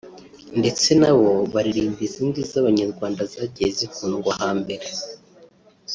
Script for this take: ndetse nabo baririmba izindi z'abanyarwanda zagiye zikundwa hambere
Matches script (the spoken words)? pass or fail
pass